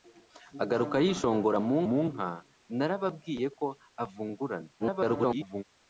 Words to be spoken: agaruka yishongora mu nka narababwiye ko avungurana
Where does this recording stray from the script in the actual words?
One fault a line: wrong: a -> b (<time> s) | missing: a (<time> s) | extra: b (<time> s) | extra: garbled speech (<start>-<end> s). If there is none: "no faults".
extra: mu (1.9 s)
extra: garbled speech (4.8-5.6 s)